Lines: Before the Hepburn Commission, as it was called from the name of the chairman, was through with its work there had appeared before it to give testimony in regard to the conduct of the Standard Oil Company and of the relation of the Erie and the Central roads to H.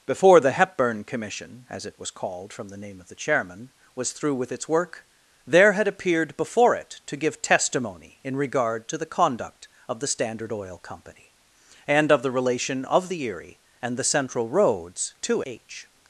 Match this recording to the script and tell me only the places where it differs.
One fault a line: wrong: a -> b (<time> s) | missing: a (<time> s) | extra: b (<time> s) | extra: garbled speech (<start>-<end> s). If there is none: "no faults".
no faults